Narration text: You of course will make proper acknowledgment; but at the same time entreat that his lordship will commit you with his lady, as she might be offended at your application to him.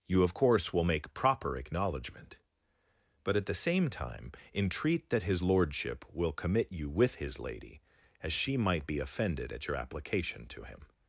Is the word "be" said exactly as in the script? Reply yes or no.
yes